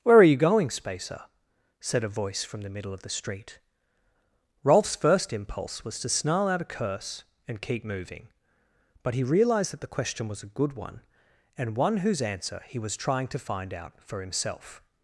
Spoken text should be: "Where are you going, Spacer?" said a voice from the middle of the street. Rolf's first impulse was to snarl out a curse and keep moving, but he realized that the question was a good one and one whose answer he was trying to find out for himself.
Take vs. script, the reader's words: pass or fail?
pass